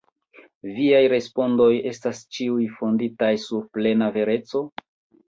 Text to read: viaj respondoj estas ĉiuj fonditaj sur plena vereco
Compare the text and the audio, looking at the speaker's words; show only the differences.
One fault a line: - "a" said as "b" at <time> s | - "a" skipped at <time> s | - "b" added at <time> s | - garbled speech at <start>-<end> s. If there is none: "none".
none